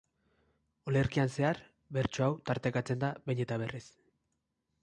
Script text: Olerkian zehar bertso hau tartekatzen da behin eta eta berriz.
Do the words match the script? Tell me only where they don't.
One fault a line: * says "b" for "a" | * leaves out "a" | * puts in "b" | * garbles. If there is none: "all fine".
* leaves out "eta"